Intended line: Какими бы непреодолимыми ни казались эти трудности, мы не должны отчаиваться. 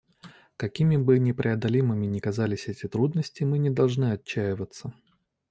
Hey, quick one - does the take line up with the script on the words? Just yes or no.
yes